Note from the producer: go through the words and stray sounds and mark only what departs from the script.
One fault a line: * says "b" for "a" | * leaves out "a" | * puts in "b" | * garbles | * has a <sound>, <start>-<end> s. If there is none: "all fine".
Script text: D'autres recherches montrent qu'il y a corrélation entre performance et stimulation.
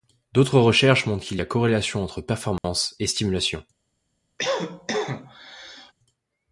* has a dropout, 2.6-2.6 s
* has a cough, 4.4-5.9 s